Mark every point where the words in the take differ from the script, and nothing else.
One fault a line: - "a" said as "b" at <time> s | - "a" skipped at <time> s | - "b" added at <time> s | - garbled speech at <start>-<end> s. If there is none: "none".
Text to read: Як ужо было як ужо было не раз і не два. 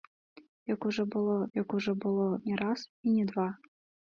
none